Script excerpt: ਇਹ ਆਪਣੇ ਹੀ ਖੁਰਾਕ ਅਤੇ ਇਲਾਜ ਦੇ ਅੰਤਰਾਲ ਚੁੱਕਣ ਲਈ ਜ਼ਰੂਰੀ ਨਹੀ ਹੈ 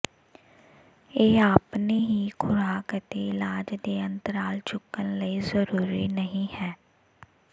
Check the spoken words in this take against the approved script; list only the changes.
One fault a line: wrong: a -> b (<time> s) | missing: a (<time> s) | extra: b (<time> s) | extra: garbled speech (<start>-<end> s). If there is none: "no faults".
no faults